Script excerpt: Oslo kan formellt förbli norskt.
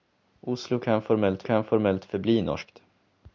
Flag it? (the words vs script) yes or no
yes